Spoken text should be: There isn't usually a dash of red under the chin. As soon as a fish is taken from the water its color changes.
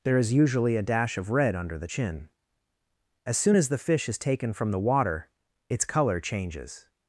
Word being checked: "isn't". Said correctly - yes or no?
no